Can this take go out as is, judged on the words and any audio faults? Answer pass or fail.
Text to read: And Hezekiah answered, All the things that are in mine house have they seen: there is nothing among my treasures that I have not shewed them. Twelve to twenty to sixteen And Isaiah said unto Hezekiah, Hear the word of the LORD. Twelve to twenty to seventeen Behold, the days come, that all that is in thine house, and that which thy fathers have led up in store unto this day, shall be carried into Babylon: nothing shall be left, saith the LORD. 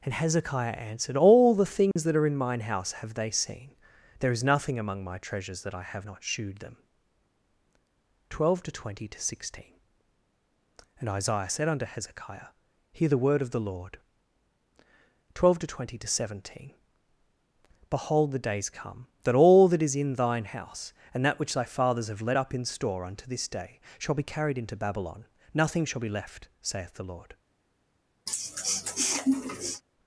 fail